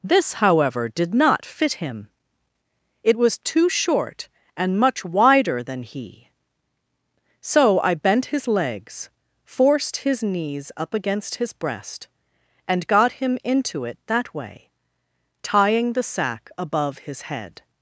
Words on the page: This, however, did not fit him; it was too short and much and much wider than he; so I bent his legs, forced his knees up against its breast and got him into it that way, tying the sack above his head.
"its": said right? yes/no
no